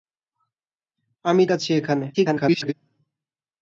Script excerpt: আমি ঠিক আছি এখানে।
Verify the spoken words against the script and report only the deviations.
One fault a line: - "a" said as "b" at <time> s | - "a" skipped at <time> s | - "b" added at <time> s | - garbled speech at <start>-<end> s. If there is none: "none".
- "ঠিক" skipped at 1.4 s
- garbled speech at 2.1-2.7 s